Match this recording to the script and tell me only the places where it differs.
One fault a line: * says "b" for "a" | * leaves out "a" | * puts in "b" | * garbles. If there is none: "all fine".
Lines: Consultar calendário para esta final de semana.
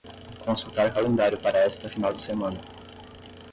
all fine